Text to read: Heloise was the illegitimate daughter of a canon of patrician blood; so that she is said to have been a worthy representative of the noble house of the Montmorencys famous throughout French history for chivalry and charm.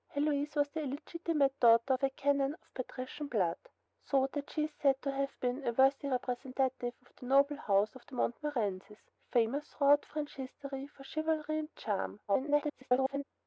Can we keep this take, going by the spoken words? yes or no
no